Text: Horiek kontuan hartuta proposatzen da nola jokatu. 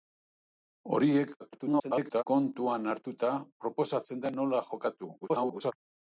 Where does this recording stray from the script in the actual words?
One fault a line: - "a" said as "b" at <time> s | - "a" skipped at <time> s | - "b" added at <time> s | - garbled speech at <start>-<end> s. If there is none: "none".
- garbled speech at 1.4-2.2 s
- garbled speech at 5.2-5.7 s